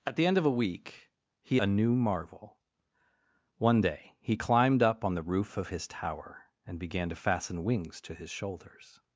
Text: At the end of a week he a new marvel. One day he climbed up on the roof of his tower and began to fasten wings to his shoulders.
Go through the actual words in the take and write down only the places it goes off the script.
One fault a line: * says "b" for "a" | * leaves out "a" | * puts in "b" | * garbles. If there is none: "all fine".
all fine